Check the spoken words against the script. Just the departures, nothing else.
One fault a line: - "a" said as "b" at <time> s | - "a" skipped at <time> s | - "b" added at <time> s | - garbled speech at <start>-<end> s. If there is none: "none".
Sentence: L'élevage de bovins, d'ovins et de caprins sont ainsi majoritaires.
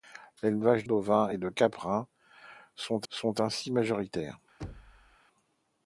- "de bovins" skipped at 0.8 s
- "sont" added at 3.1 s